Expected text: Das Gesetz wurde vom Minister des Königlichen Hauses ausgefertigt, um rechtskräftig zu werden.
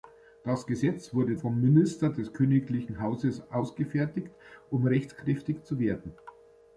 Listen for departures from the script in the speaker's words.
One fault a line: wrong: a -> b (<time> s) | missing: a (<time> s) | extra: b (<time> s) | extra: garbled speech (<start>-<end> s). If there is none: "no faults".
no faults